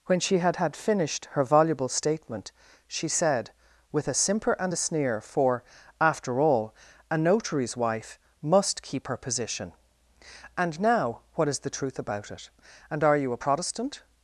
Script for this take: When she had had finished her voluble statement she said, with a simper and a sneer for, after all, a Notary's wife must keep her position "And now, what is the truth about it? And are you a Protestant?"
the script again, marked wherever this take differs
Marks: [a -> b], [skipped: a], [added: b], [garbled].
When she had had finished her voluble statement she said, with a simper and a sneer for, after all, a Notary's wife must keep her position "And now, what is the truth about it? And are you a Protestant?"